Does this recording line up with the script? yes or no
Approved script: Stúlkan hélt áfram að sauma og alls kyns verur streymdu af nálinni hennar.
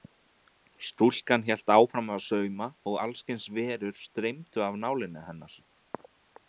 yes